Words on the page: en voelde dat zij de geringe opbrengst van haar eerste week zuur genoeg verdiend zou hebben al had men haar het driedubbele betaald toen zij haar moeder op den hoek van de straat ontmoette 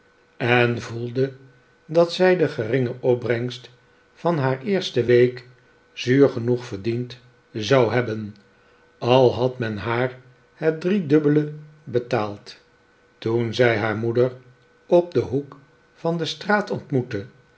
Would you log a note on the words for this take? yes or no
no